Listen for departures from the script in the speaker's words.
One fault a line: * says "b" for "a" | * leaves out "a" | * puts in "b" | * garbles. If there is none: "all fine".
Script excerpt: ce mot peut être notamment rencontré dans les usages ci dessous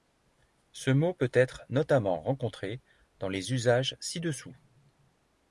all fine